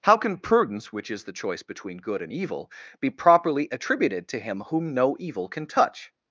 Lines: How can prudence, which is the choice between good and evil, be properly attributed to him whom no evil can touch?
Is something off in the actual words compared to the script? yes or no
no